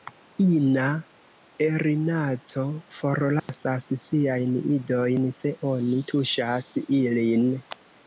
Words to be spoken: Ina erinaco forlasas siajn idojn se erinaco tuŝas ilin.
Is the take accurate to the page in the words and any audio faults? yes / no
no